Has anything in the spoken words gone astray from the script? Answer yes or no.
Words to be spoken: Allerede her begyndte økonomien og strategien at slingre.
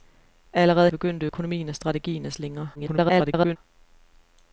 yes